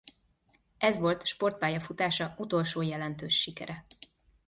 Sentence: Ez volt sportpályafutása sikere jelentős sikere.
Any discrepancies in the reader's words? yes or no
yes